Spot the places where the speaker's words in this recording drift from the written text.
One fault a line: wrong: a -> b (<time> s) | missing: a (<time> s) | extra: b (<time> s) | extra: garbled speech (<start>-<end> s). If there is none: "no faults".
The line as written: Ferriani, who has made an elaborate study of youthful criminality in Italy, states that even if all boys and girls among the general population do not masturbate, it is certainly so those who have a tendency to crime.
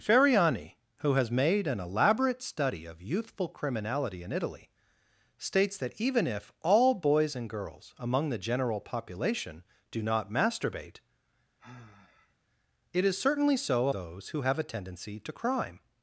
no faults